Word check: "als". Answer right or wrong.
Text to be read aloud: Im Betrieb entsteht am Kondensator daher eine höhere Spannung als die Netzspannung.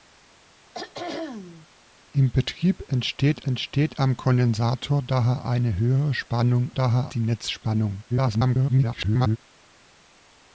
wrong